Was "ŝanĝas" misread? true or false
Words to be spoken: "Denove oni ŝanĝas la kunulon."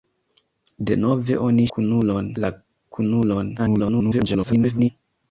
true